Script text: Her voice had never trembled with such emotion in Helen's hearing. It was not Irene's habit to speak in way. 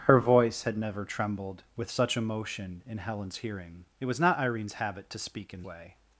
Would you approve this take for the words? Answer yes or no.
yes